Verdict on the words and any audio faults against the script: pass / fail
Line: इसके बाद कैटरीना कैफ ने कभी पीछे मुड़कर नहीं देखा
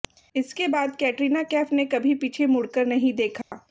fail